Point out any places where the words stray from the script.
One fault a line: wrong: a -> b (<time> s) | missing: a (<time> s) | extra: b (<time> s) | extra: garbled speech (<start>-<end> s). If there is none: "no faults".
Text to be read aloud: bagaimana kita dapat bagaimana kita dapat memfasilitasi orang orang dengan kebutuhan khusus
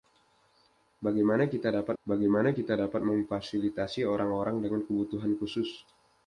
no faults